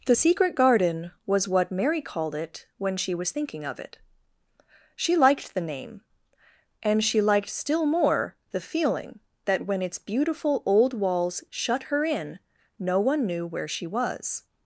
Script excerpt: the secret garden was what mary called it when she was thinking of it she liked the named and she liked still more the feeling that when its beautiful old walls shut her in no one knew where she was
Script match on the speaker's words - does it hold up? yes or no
no